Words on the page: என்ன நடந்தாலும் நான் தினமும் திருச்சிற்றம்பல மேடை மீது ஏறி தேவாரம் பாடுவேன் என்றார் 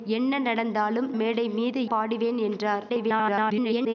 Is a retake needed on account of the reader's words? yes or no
yes